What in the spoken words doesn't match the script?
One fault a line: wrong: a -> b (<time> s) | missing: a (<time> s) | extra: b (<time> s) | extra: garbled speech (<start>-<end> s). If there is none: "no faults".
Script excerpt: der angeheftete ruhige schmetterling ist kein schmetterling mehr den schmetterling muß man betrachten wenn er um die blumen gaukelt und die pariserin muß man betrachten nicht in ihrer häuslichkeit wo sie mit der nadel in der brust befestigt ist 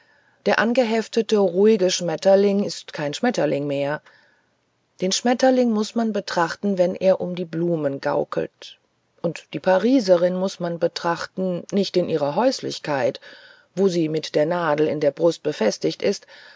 no faults